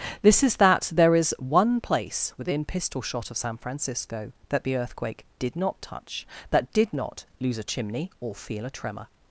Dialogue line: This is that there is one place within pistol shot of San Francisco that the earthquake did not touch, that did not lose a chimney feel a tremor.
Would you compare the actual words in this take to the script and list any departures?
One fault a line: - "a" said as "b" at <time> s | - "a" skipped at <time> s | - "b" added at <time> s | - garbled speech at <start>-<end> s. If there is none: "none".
- "or" added at 8.2 s